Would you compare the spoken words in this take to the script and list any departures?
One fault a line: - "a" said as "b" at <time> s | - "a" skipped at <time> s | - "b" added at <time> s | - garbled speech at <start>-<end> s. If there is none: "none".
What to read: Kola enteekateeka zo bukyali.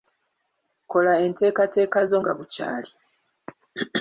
- "nga" added at 2.2 s